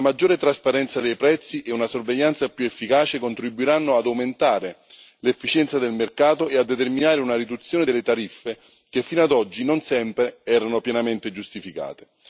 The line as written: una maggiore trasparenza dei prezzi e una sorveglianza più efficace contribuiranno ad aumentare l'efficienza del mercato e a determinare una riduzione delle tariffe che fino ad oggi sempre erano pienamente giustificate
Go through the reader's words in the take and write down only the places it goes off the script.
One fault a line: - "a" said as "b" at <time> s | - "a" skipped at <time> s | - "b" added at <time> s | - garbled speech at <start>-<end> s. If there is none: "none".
- "non" added at 9.6 s